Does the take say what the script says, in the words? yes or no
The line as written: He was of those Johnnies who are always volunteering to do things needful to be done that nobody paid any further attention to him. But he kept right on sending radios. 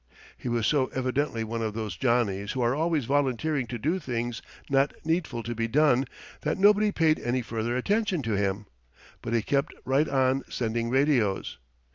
no